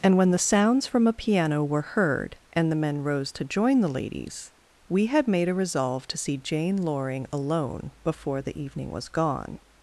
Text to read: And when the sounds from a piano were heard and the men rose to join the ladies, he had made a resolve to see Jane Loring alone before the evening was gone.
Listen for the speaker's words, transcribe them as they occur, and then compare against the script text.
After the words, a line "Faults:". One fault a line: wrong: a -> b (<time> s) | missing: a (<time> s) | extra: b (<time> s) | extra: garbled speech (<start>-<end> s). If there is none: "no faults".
And when the sounds from a piano were heard and the men rose to join the ladies, we had made a resolve to see Jane Loring alone before the evening was gone.
Faults:
wrong: he -> we (4.9 s)